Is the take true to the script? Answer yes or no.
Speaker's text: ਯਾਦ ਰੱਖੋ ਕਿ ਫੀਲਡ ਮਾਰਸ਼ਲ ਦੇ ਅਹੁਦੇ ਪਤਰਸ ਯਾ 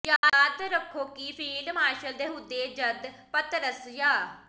no